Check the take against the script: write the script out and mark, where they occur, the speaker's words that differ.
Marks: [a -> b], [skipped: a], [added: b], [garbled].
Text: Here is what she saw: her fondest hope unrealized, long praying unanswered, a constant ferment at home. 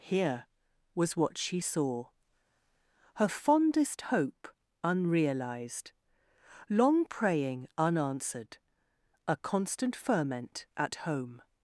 Here [is -> was] what she saw: her fondest hope unrealized, long praying unanswered, a constant ferment at home.